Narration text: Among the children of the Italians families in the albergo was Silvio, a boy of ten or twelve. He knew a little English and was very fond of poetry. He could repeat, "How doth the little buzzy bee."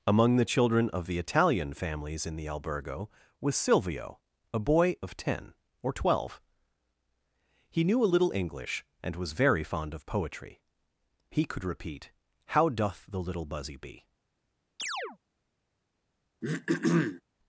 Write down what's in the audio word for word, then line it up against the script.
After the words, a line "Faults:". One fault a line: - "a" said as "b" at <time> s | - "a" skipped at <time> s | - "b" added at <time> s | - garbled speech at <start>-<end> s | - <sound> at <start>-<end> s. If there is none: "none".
Among the children of the Italian families in the albergo was Silvio, a boy of ten or twelve. He knew a little English and was very fond of poetry. He could repeat, "How doth the little buzzy bee."
Faults:
- "Italians" said as "Italian" at 1.2 s
- chirp at 14.8-15.2 s
- throat clearing at 16.4-17.2 s